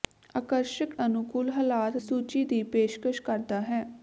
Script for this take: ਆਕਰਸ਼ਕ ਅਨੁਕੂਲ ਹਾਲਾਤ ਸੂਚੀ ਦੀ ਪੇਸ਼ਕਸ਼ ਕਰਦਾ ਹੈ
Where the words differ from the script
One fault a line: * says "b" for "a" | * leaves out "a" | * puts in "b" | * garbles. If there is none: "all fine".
all fine